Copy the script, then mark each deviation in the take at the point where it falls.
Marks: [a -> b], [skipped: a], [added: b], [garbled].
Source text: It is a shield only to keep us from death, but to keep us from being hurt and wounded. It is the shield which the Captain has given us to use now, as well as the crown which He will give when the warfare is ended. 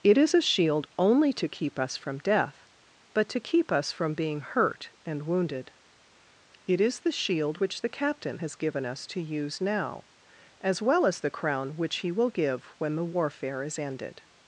It is a shield only to keep us from death, but to keep us from being hurt and wounded. It is the shield which the Captain has given us to use now, as well as the crown which He will give when the warfare is ended.